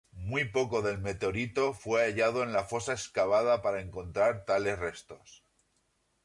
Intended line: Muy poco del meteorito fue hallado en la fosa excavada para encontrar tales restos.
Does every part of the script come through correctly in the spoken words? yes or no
yes